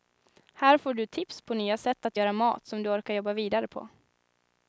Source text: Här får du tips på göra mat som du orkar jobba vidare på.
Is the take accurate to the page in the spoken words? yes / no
no